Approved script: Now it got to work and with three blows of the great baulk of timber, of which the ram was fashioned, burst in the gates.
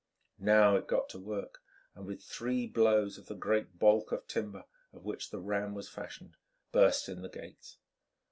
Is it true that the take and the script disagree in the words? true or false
false